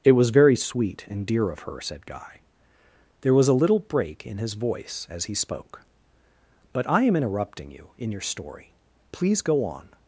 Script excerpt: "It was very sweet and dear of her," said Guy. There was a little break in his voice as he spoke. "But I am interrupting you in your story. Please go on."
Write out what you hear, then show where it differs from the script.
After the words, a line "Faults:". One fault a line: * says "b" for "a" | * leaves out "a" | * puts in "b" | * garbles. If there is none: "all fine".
"It was very sweet and dear of her," said Guy. There was a little break in his voice as he spoke. "But I am interrupting you in your story. Please go on."
Faults:
all fine